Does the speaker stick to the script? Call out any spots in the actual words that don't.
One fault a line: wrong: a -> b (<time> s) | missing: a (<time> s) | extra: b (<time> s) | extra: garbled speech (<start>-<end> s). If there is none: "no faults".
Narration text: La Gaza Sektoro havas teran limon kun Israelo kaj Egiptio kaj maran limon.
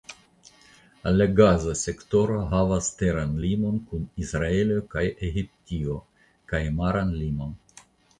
no faults